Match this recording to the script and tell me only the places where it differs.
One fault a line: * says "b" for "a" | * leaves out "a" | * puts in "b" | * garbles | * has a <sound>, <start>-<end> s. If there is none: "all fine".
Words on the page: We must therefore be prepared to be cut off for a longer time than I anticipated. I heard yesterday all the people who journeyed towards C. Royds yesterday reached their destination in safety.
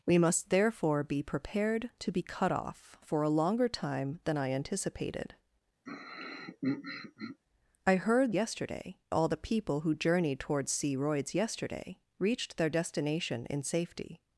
* has a throat clearing, 5.9-7.4 s